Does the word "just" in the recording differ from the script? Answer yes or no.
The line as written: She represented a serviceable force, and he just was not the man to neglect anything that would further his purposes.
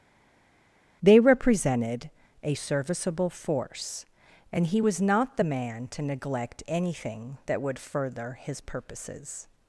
yes